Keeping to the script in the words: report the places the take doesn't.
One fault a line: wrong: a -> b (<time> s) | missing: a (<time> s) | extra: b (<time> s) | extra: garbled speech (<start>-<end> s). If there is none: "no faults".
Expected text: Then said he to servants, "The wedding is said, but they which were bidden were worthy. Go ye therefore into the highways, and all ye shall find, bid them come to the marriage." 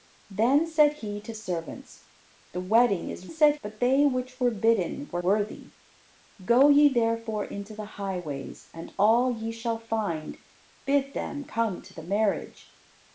no faults